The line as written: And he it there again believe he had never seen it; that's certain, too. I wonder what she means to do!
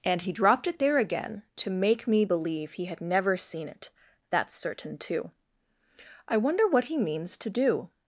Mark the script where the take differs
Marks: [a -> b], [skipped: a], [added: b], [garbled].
And he [added: dropped] it there again [added: to make me] believe he had never seen it; that's certain, too. I wonder what [she -> he] means to do!